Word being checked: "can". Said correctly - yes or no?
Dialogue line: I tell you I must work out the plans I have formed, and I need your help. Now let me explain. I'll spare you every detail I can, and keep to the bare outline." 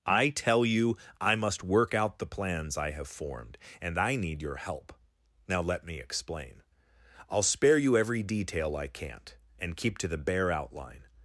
no